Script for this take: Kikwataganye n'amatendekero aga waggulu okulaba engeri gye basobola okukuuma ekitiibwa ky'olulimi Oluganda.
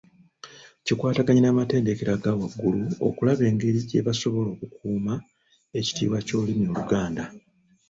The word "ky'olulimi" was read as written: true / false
true